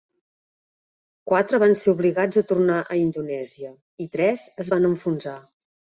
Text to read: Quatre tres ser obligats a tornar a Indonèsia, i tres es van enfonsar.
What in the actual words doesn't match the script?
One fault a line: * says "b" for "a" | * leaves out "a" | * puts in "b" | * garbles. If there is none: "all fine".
* says "van" for "tres"